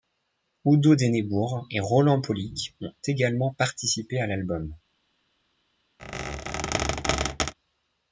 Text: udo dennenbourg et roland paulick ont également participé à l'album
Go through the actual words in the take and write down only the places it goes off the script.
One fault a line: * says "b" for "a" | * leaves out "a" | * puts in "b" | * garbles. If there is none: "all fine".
all fine